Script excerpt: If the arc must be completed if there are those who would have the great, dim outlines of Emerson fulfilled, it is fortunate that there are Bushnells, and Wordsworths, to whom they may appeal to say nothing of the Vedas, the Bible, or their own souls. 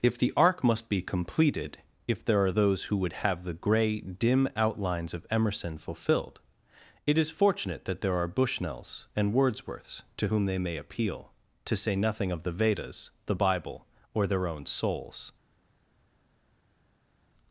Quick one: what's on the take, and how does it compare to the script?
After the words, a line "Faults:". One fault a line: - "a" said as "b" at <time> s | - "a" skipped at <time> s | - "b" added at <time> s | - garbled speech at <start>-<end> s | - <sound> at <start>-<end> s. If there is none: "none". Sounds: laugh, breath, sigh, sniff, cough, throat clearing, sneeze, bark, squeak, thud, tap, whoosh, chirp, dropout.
If the arc must be completed if there are those who would have the grey, dim outlines of Emerson fulfilled, it is fortunate that there are Bushnells, and Wordsworths, to whom they may appeal to say nothing of the Vedas, the Bible, or their own souls.
Faults:
- "great" said as "grey" at 3.5 s